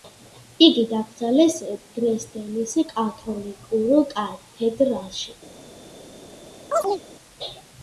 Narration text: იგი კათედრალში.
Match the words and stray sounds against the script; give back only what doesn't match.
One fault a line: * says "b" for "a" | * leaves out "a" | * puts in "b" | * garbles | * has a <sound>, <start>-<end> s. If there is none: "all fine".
* puts in "დაკრძალეს დრეზდენის კათოლიკურ"
* has a chirp, 6.7-7.0 s